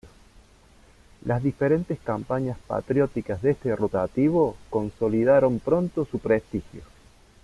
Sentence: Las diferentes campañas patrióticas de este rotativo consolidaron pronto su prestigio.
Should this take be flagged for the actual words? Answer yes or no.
no